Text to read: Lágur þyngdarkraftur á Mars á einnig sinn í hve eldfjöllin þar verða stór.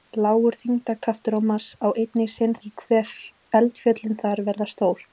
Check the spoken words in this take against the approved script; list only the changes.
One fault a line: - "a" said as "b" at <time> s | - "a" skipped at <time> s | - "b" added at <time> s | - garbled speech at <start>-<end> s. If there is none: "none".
none